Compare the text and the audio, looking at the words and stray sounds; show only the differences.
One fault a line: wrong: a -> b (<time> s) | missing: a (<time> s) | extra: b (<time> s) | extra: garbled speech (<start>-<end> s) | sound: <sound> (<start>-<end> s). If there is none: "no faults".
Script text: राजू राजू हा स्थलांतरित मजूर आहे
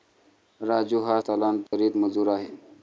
missing: राजू (1.0 s)
sound: dropout (1.7-1.7 s)